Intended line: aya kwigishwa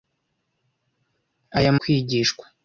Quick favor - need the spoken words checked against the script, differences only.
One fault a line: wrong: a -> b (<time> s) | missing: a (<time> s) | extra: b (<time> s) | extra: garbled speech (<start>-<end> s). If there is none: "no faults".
no faults